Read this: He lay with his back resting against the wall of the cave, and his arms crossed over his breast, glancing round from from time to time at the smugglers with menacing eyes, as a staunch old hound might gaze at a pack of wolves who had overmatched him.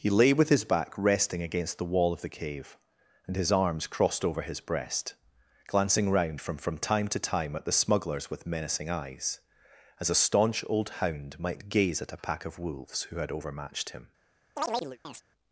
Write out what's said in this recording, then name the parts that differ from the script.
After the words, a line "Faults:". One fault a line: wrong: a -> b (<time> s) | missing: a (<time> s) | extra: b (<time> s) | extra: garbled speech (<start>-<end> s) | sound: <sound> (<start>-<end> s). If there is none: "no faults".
He lay with his back resting against the wall of the cave, and his arms crossed over his breast, glancing round from from time to time at the smugglers with menacing eyes, as a staunch old hound might gaze at a pack of wolves who had overmatched him.
Faults:
sound: chirp (14.6-15.2 s)